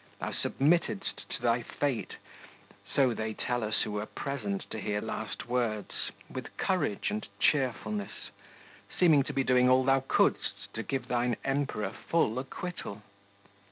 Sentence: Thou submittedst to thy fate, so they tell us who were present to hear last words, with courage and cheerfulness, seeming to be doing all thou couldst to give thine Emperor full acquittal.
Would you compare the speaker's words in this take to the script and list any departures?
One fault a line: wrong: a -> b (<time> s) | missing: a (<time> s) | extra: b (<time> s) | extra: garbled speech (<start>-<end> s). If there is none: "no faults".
no faults